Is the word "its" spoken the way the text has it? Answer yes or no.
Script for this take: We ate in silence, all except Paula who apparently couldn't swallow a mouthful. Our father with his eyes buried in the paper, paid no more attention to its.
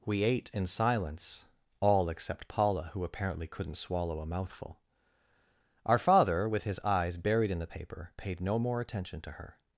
no